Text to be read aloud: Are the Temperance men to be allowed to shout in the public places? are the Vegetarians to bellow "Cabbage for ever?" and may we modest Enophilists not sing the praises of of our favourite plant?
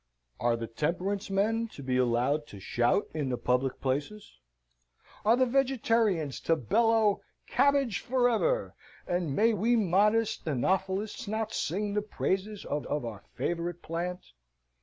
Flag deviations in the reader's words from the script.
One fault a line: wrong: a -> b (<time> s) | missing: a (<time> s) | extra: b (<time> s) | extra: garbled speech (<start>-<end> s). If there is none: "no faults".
no faults